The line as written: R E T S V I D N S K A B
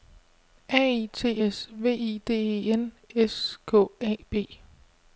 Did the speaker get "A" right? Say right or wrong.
right